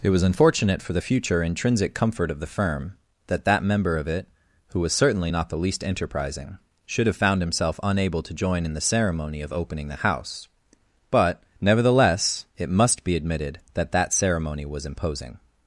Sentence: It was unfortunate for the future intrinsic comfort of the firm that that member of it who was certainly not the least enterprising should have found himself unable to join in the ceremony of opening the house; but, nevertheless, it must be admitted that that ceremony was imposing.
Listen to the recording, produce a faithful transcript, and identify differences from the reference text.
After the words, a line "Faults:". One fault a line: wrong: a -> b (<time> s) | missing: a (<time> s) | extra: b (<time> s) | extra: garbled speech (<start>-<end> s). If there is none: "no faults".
It was unfortunate for the future intrinsic comfort of the firm that that member of it who was certainly not the least enterprising should have found himself unable to join in the ceremony of opening the house; but, nevertheless, it must be admitted that that ceremony was imposing.
Faults:
no faults